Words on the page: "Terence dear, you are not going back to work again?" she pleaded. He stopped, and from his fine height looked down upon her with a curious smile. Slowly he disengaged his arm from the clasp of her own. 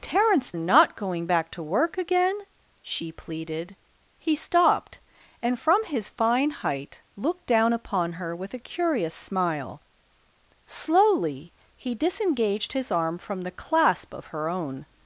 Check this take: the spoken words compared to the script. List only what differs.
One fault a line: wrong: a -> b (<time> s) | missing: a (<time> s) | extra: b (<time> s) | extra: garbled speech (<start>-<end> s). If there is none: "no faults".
missing: dear you are (0.5 s)